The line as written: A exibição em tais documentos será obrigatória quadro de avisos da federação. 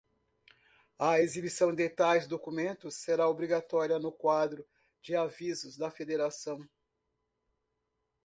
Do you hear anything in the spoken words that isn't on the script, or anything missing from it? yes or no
yes